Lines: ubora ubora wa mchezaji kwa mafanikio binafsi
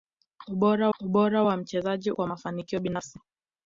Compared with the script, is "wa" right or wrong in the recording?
right